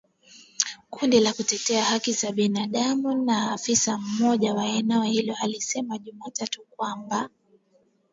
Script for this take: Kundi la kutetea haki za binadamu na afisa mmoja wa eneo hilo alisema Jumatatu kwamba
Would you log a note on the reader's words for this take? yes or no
no